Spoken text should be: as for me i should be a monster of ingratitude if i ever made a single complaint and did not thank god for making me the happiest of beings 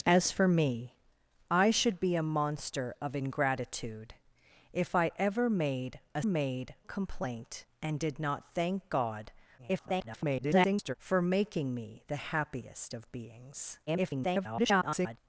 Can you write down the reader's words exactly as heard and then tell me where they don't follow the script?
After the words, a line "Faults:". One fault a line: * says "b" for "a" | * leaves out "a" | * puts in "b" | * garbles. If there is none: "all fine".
as for me i should be a monster of ingratitude if i ever made a made complaint and did not thank god [garbled] for making me the happiest of beings [garbled]
Faults:
* says "made" for "single"
* garbles
* garbles